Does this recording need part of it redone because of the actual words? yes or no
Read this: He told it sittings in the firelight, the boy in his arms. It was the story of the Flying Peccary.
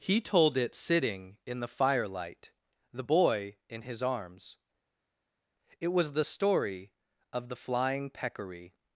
yes